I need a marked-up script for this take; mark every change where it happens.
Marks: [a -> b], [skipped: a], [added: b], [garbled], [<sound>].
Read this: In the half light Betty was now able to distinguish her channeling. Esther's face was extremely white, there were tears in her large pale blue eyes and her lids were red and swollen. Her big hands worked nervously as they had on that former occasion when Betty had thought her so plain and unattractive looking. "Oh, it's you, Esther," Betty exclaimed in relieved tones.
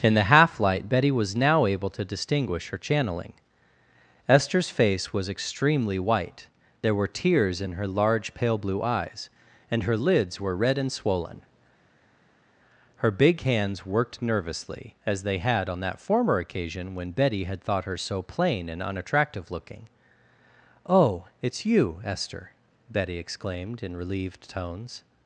In the half light Betty was now able to distinguish her channeling. Esther's face was extremely white, there were tears in her large pale blue eyes and her lids were red and swollen. Her big hands worked nervously as they had on that former occasion when Betty had thought her so plain and unattractive looking. "Oh, it's you, Esther," Betty exclaimed in relieved tones.